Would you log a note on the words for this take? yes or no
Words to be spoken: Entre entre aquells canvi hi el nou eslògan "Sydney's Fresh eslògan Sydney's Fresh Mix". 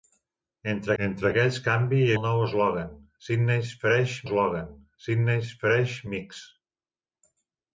no